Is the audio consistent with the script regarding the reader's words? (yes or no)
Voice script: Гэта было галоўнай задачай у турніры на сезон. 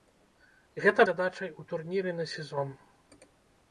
no